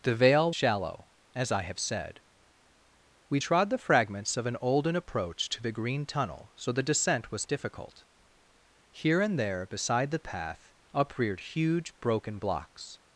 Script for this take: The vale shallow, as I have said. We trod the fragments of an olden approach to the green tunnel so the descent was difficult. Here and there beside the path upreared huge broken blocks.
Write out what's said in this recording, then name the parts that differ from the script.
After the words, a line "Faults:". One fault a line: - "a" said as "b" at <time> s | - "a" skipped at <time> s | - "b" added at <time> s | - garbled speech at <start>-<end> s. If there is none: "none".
The vale shallow, as I have said. We trod the fragments of an olden approach to the green tunnel so the descent was difficult. Here and there beside the path upreared huge broken blocks.
Faults:
none